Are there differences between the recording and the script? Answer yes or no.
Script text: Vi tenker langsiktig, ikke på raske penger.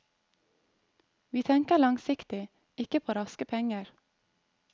no